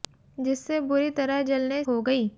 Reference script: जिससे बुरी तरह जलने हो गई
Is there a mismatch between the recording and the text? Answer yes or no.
no